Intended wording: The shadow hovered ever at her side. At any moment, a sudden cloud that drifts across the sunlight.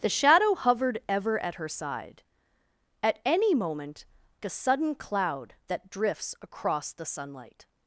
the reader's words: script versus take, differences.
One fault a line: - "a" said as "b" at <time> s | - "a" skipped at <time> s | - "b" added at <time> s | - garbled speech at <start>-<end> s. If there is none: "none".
none